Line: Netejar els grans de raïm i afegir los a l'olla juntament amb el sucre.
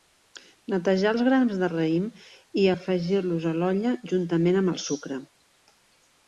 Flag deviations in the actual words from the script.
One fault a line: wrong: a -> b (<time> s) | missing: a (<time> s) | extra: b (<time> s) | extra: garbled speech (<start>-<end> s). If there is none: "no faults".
no faults